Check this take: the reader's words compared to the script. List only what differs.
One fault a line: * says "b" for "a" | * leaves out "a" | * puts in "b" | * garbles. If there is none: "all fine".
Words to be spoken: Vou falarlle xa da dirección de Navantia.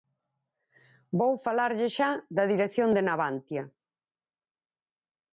all fine